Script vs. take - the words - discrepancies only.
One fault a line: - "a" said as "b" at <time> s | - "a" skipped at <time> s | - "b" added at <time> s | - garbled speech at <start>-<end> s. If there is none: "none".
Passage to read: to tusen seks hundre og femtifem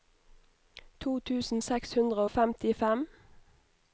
none